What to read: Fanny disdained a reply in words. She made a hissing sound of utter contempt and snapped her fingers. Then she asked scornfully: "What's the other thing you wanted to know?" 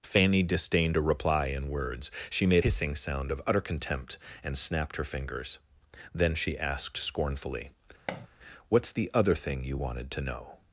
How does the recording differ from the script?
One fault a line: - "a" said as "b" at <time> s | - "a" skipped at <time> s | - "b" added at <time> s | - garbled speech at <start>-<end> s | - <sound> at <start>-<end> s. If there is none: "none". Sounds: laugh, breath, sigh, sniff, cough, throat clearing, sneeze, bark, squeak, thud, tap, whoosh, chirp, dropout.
- "a" skipped at 2.6 s
- thud at 8.1-8.3 s